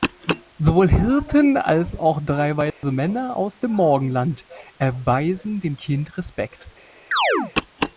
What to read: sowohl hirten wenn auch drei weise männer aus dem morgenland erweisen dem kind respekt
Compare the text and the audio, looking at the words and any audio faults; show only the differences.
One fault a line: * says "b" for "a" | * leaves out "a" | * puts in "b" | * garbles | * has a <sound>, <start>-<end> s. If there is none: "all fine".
* says "als" for "wenn"
* has a dropout, 2.7-2.8 s
* has a chirp, 7.1-7.5 s